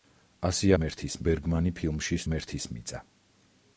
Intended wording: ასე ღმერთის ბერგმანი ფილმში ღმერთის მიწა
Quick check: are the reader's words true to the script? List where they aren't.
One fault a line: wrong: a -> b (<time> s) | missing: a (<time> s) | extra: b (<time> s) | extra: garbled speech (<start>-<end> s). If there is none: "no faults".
no faults